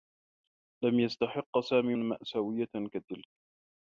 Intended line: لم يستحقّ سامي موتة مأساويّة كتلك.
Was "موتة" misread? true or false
true